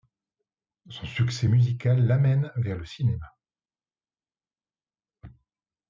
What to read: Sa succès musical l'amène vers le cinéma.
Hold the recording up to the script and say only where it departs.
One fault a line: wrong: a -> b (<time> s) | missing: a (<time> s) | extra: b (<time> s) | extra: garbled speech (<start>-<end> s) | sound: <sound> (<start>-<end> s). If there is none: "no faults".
wrong: Sa -> Son (0.9 s)